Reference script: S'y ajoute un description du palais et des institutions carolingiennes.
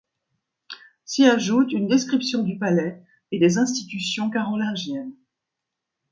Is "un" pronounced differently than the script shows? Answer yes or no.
yes